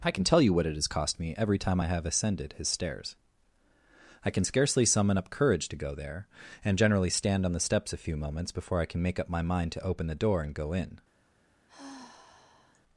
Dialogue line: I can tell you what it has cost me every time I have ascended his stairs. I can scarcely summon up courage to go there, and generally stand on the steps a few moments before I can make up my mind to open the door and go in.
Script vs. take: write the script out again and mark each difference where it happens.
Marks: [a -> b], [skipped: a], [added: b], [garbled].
I can tell you what it has cost me every time I have ascended his stairs. I can scarcely summon up courage to go there, and generally stand on the steps a few moments before I can make up my mind to open the door and go in.